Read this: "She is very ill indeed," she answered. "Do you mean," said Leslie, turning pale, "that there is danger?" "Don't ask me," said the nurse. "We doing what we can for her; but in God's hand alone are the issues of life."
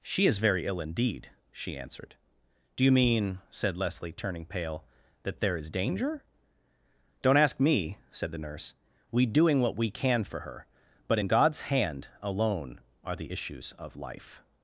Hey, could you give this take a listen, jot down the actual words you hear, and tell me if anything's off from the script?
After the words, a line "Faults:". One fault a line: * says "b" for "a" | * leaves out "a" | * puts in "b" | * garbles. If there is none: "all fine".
"She is very ill indeed," she answered. "Do you mean," said Leslie, turning pale, "that there is danger?" "Don't ask me," said the nurse. "We doing what we can for her; but in God's hand alone are the issues of life."
Faults:
all fine